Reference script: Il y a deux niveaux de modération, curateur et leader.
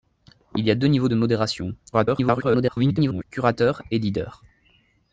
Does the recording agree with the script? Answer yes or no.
no